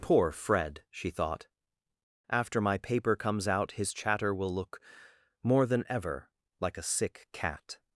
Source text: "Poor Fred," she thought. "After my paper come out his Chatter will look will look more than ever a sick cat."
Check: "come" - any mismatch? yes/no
yes